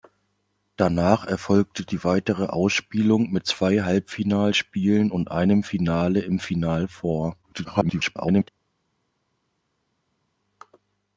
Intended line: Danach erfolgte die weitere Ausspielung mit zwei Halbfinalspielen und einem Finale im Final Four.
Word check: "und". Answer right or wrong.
right